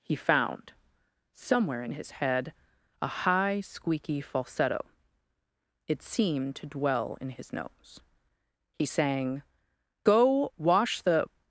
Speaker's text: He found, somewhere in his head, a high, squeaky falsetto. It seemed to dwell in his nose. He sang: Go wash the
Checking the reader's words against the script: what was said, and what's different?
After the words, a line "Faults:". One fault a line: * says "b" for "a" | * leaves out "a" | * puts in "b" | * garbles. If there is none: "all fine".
He found, somewhere in his head, a high, squeaky falsetto. It seemed to dwell in his nose. He sang: Go wash the
Faults:
all fine